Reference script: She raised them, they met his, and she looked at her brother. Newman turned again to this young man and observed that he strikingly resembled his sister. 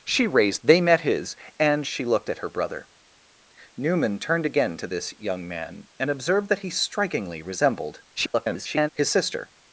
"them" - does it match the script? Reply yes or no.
no